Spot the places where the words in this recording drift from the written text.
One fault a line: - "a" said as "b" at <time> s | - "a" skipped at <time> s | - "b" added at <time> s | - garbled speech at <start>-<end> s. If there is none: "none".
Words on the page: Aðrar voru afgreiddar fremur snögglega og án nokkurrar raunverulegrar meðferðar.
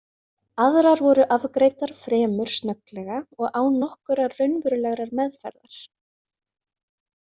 none